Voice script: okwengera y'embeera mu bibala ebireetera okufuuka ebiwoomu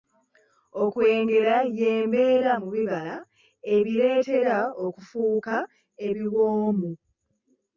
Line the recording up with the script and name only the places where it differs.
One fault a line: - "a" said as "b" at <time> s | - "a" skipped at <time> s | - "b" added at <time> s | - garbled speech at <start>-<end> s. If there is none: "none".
none